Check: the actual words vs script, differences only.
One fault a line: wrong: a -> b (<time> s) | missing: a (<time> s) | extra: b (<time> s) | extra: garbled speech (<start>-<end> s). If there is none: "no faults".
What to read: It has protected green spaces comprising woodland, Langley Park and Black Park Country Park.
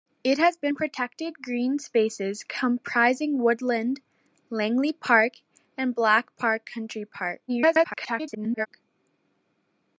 extra: garbled speech (7.5-8.7 s)